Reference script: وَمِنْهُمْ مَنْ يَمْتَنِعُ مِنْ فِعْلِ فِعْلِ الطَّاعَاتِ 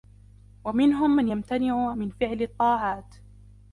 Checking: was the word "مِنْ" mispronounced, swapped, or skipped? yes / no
no